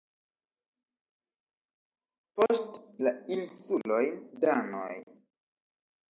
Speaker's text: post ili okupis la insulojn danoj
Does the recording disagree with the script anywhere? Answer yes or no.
yes